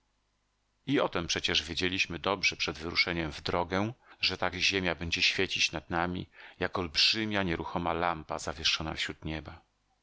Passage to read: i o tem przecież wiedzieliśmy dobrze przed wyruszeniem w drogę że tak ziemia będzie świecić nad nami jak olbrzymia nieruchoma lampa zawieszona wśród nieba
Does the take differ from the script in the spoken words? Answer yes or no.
no